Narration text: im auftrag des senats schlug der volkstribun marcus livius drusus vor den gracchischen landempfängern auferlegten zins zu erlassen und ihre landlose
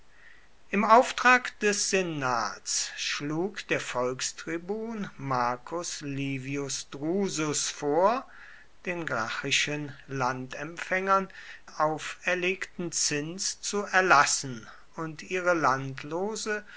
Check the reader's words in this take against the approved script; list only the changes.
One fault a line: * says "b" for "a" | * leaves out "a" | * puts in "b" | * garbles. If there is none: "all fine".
all fine